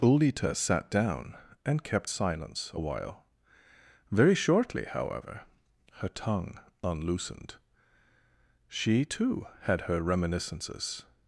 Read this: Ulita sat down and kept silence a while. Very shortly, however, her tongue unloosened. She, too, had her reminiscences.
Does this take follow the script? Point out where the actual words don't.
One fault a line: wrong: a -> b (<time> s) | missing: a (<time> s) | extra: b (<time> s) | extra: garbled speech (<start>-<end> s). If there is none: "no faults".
no faults